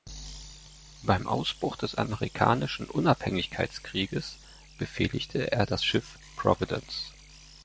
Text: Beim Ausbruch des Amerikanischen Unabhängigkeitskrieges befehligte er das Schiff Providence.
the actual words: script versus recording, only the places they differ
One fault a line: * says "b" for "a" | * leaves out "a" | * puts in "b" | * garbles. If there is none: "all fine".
all fine